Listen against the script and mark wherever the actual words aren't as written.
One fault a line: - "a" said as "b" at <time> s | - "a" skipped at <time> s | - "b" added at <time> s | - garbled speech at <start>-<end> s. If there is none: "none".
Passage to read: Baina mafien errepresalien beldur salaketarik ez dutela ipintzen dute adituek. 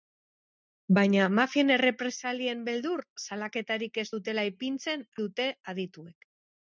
none